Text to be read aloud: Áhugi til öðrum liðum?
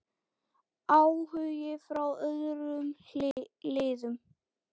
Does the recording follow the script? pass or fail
fail